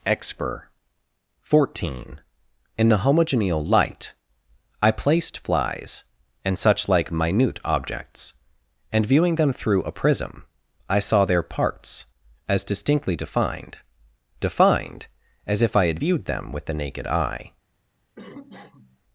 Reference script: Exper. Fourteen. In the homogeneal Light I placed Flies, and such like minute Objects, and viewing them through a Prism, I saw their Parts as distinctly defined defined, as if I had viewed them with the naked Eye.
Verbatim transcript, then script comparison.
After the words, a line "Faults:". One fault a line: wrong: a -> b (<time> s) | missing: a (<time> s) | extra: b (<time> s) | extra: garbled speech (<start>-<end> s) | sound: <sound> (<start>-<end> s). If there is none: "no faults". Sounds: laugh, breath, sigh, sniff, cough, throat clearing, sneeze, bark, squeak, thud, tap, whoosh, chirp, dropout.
Exper. Fourteen. In the homogeneal Light I placed Flies, and such like minute Objects, and viewing them through a Prism, I saw their Parts as distinctly defined defined, as if I had viewed them with the naked Eye.
Faults:
sound: cough (18.2-19.0 s)